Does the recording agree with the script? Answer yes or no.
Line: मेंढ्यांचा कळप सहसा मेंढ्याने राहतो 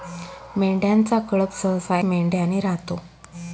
yes